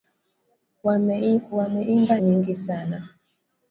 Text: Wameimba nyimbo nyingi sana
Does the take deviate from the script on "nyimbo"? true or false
true